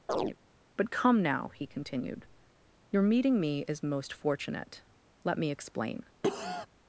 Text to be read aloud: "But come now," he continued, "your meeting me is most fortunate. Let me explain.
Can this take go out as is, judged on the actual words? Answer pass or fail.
pass